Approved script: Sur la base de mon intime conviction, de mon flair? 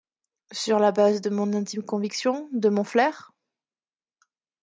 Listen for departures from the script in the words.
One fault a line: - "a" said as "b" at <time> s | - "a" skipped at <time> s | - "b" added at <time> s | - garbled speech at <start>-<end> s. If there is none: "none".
none